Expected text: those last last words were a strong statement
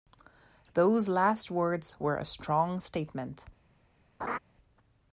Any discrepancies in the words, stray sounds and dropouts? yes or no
yes